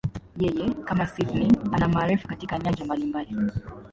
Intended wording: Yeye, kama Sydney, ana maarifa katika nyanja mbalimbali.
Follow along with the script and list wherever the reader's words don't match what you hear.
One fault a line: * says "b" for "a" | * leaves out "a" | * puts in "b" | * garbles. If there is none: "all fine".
all fine